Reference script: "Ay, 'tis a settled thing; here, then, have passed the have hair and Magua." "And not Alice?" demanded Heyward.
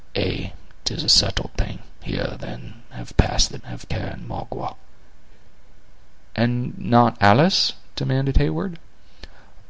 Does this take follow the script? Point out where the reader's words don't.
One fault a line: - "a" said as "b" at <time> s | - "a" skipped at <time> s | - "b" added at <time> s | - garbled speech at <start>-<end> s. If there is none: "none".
none